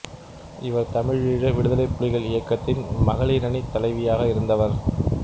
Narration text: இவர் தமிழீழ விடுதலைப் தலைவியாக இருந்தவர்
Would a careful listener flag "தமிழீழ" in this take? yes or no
no